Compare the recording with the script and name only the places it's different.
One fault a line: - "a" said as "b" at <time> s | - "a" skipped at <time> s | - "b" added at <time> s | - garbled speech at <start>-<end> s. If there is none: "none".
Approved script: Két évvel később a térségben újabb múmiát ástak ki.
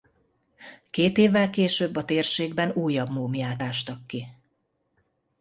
none